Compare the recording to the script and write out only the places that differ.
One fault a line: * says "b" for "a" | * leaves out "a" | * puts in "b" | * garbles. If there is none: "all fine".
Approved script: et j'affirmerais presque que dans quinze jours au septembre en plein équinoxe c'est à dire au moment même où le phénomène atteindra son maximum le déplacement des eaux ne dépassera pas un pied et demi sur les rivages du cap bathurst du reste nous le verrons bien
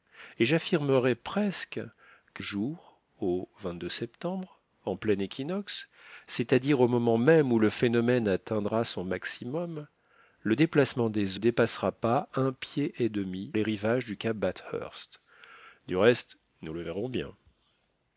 * leaves out "dans quinze"
* leaves out "eaux ne"
* leaves out "sur"